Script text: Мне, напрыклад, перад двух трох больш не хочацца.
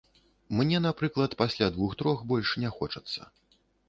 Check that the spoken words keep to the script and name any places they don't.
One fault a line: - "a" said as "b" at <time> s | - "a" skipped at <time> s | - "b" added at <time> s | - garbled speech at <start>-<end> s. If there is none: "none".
- "перад" said as "пасля" at 1.4 s